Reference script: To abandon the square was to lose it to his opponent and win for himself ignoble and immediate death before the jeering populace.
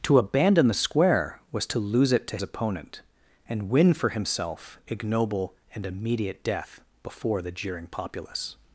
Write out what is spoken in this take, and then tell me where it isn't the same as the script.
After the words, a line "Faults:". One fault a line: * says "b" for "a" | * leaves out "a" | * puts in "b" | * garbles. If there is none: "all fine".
To abandon the square was to lose it to opponent and win for himself ignoble and immediate death before the jeering populace.
Faults:
* leaves out "his"